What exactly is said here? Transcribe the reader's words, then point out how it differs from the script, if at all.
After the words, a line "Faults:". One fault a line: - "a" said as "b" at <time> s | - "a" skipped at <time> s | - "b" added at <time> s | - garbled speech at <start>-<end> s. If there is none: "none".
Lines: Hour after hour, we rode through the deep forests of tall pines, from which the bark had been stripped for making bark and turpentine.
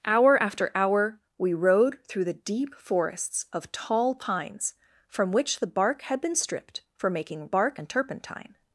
Hour after hour, we rode through the deep forests of tall pines, from which the bark had been stripped for making bark and turpentine.
Faults:
none